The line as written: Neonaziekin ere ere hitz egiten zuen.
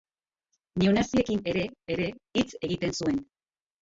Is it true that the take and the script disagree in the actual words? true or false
false